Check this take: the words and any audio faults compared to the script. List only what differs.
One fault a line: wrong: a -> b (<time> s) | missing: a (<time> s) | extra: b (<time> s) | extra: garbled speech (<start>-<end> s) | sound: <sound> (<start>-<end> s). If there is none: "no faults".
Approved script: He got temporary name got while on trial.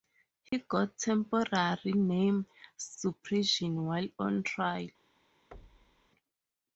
sound: dropout (0.5-0.5 s)
wrong: got -> suppression (2.8 s)
sound: thud (5.5-6.1 s)